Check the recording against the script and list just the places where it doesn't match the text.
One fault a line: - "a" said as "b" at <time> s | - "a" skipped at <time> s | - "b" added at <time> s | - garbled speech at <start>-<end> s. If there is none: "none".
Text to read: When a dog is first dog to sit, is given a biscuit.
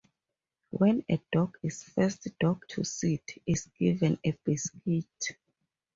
none